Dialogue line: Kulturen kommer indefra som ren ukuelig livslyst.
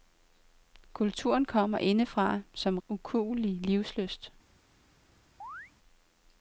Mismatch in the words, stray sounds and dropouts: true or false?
true